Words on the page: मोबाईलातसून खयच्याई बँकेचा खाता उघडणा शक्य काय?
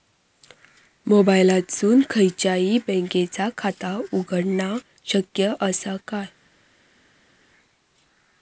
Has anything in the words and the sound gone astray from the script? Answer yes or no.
yes